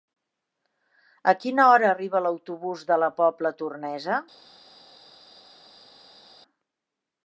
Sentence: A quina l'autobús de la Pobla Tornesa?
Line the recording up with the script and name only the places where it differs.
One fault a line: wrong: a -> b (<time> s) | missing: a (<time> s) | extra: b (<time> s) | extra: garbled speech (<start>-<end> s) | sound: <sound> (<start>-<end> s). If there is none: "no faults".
extra: hora arriba (1.7 s)